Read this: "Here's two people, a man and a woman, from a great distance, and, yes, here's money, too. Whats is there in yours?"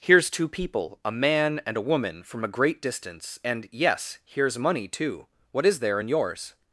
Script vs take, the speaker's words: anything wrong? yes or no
yes